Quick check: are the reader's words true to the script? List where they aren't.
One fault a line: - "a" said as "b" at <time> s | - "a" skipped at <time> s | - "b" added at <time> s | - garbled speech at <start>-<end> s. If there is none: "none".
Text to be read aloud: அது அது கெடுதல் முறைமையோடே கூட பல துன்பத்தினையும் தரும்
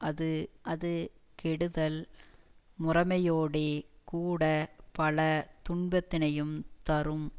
none